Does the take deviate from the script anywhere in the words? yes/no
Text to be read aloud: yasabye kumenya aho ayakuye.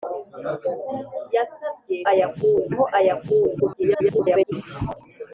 yes